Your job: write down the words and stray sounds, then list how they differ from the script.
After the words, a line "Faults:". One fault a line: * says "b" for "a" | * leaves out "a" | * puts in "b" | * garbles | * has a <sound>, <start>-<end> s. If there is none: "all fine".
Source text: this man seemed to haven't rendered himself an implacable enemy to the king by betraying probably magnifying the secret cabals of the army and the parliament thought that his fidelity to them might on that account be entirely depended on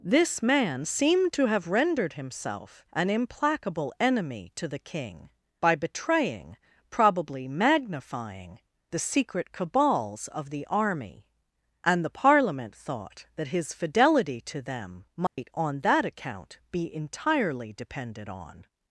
this man seemed to have rendered himself an implacable enemy to the king by betraying probably magnifying the secret cabals of the army and the parliament thought that his fidelity to them might on that account be entirely depended on
Faults:
* says "have" for "haven't"
* has a dropout, 15.3-15.4 s